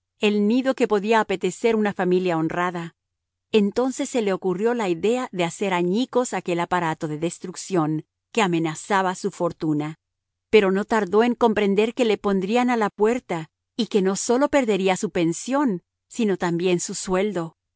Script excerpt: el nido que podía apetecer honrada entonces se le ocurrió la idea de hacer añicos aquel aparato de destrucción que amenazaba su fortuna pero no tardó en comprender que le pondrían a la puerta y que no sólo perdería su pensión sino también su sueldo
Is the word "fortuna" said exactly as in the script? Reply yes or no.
yes